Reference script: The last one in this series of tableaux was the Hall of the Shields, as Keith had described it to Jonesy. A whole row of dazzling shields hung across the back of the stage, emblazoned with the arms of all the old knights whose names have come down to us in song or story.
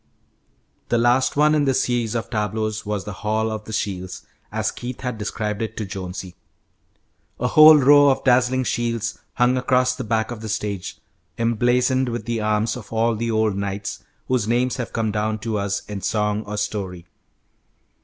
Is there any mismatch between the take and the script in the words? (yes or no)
no